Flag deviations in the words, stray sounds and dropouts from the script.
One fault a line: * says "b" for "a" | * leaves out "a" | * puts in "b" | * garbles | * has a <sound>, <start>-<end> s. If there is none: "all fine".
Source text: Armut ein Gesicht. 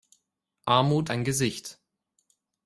all fine